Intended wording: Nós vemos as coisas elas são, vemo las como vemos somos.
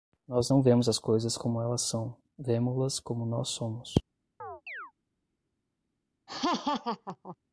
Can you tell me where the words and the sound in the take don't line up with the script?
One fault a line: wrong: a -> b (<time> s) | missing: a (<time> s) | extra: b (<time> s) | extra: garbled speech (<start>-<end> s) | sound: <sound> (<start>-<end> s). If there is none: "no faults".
extra: não (0.5 s)
extra: como (1.4 s)
wrong: vemos -> nós (3.2 s)
sound: chirp (4.4-4.9 s)
sound: laugh (6.3-7.4 s)